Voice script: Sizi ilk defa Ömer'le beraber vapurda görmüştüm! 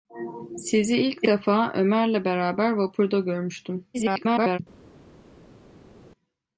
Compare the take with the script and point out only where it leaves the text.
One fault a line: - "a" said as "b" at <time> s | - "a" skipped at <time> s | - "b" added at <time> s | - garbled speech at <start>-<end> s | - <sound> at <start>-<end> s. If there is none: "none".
- garbled speech at 3.9-4.6 s